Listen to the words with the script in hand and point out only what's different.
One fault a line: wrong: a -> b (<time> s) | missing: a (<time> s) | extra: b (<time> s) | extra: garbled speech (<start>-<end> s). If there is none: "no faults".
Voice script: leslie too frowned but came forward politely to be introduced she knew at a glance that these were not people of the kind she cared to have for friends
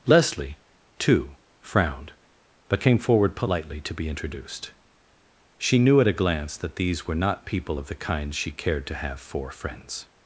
no faults